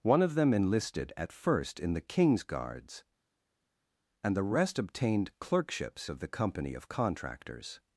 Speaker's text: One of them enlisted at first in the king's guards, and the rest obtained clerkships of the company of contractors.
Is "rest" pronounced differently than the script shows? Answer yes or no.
no